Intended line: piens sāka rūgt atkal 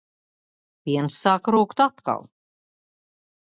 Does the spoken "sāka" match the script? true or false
true